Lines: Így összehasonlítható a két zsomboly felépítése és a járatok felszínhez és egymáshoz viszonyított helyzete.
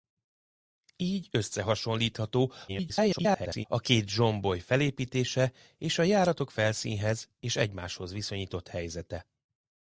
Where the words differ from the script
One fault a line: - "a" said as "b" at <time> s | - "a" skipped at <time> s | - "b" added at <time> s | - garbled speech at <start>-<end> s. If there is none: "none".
- garbled speech at 2.7-3.7 s